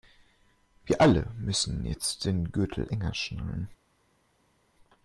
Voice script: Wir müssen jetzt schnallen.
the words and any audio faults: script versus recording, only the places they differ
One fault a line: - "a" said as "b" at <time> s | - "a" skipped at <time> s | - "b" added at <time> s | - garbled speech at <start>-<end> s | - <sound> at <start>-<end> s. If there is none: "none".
- "alle" added at 1.0 s
- "den Gürtel enger" added at 2.2 s